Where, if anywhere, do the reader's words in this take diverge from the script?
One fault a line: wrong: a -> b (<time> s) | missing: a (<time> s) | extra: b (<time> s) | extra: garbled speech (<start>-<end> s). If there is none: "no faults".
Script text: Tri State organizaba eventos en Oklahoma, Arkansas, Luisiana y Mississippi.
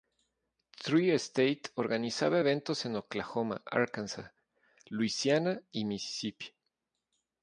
no faults